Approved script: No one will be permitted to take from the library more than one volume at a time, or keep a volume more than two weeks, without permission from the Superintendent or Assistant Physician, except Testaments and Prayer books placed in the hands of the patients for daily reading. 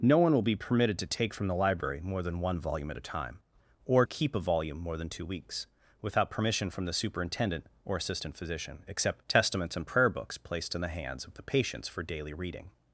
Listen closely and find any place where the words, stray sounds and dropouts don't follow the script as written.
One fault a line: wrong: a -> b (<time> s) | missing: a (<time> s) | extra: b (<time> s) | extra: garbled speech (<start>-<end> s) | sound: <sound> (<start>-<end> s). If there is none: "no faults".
no faults